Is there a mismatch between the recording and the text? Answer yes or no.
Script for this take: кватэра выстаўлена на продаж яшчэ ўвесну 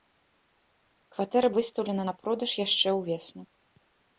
no